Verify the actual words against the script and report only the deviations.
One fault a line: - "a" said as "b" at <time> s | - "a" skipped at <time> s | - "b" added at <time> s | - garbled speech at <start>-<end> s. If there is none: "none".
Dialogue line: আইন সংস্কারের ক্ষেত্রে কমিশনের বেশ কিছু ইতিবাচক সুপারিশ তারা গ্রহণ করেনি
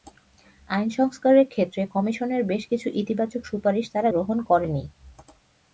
none